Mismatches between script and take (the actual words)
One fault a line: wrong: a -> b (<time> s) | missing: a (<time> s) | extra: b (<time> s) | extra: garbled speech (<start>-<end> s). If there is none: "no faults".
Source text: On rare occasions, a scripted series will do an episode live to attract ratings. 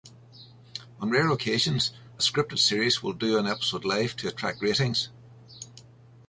no faults